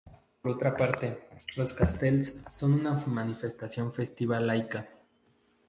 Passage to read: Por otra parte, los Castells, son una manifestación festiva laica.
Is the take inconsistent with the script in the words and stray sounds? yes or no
no